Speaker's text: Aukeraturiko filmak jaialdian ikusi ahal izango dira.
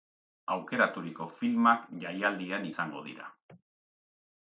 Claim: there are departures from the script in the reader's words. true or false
true